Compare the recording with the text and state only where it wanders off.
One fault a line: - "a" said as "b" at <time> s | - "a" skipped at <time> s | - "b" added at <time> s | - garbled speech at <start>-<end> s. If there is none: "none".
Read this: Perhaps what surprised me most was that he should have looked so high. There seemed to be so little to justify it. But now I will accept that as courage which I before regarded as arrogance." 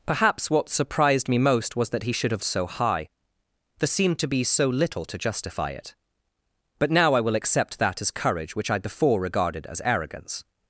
- "looked" skipped at 2.4 s